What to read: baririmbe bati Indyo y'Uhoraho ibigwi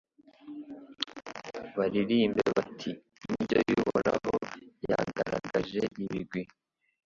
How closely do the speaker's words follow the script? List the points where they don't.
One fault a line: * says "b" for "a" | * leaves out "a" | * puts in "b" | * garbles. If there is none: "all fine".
* puts in "yagaragaje"